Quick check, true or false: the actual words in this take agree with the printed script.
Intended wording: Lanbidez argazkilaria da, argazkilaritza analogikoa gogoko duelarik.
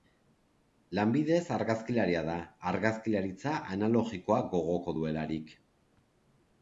true